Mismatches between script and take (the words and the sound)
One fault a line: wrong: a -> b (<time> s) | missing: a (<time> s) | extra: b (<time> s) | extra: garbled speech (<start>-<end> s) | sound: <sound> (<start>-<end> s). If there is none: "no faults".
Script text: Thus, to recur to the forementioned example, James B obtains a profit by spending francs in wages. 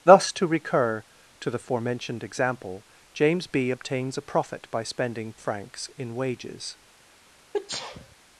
sound: sneeze (7.5-8.2 s)